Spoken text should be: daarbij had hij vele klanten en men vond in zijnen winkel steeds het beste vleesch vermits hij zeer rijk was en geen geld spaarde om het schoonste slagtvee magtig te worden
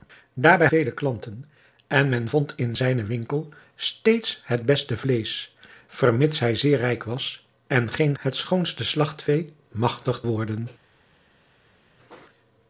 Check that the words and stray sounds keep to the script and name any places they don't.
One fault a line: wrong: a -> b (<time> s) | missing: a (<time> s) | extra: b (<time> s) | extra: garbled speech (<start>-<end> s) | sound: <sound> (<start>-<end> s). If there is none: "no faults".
missing: had hij (0.7 s)
missing: geld spaarde om (8.2 s)
missing: te (10.2 s)